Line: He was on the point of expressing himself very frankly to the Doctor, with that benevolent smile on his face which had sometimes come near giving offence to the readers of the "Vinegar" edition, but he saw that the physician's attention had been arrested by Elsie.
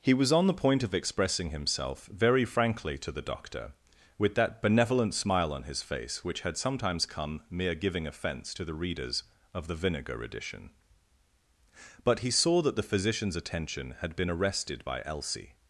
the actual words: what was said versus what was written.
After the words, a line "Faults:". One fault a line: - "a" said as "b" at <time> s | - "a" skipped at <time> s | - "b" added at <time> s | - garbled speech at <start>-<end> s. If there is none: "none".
He was on the point of expressing himself very frankly to the Doctor, with that benevolent smile on his face which had sometimes come mere giving offence to the readers of the "Vinegar" edition, but he saw that the physician's attention had been arrested by Elsie.
Faults:
- "near" said as "mere" at 7.5 s